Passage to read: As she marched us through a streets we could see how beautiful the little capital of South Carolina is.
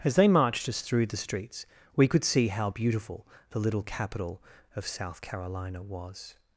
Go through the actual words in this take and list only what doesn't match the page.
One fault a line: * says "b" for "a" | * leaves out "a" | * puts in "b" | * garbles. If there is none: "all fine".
* says "they" for "she"
* says "the" for "a"
* says "was" for "is"